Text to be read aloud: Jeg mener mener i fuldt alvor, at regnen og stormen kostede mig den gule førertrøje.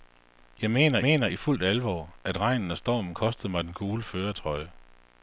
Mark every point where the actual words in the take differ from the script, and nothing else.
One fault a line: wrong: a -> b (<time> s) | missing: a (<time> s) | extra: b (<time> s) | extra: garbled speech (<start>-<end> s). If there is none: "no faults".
no faults